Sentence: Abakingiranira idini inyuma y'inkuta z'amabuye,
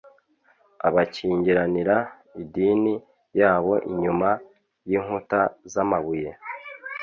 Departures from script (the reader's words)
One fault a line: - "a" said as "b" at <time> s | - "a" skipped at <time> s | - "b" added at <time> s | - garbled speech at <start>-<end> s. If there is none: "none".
- "yabo" added at 3.4 s